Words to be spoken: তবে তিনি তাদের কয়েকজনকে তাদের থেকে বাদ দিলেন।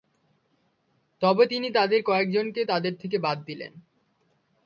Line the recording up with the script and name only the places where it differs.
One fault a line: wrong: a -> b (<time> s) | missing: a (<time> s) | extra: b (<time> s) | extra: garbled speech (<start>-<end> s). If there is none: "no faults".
no faults